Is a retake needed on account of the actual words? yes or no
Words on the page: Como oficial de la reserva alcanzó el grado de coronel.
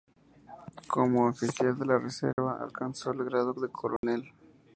no